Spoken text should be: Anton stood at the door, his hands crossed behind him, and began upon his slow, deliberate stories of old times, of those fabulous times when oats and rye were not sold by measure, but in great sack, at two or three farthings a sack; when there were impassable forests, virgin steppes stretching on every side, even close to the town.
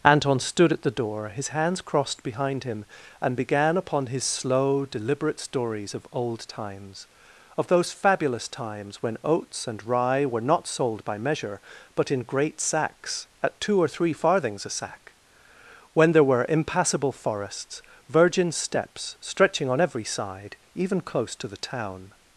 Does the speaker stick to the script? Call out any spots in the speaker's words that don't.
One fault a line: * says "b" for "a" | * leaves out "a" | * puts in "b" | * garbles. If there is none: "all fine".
* says "sacks" for "sack"